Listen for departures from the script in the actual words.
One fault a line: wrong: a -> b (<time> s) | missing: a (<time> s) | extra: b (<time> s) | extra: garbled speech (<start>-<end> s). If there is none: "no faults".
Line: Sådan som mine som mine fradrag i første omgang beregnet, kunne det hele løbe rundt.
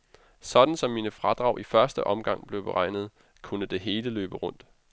missing: som mine (1.1 s)
extra: blev (2.5 s)